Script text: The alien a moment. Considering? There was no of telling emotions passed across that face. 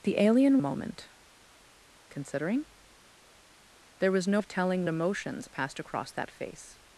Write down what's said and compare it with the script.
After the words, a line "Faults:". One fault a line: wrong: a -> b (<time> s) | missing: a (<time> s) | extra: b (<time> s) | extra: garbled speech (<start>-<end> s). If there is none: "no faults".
The alien a moment. Considering? There was no of telling emotions passed across that face.
Faults:
no faults